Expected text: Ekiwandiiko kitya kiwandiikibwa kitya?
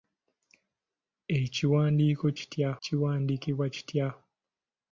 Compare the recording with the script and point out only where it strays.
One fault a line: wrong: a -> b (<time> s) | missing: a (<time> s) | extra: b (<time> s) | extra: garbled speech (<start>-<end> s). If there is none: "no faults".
no faults